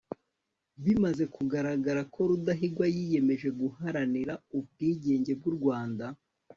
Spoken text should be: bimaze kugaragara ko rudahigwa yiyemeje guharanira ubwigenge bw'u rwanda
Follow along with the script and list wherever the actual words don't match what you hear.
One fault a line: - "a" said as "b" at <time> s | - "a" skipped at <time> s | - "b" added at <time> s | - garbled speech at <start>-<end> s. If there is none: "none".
none